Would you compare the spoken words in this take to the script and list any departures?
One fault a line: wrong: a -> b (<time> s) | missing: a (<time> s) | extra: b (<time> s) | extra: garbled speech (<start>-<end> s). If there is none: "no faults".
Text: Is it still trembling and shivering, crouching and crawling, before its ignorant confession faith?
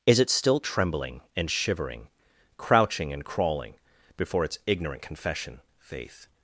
no faults